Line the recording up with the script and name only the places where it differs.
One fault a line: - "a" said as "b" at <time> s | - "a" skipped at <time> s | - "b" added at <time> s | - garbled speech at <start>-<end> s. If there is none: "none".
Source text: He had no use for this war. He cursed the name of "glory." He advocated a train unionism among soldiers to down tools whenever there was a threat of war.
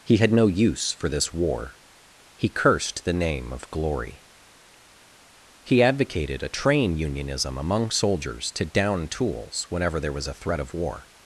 none